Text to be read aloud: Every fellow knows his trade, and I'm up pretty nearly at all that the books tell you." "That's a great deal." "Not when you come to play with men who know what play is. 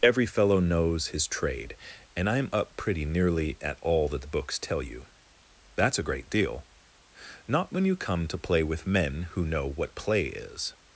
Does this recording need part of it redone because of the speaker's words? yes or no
no